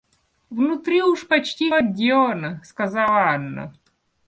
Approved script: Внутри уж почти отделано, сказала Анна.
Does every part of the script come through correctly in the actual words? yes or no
yes